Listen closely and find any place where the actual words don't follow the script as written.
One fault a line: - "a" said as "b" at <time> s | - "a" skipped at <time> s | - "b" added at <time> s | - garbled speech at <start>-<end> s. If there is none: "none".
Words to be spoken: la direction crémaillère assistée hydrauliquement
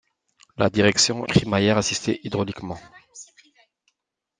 none